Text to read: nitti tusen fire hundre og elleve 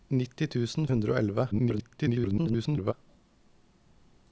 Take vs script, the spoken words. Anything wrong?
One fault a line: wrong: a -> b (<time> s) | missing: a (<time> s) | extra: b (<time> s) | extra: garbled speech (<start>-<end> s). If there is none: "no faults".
missing: fire (0.9 s)
extra: garbled speech (1.5-2.9 s)